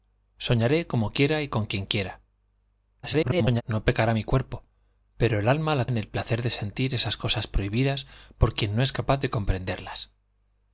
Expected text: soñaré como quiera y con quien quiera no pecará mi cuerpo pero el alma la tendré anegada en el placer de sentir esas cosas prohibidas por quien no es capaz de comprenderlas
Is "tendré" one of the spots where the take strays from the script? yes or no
yes